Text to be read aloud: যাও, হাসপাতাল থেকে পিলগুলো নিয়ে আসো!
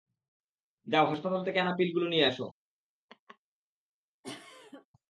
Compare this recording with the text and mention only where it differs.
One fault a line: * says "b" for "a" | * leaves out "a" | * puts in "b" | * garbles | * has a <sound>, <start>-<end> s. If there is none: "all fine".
* puts in "আনা"
* has a laugh, 3.1-3.4 s
* has a cough, 4.2-4.9 s